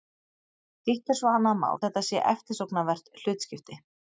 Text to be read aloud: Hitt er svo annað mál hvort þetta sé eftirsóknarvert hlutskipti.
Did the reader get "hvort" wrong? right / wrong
wrong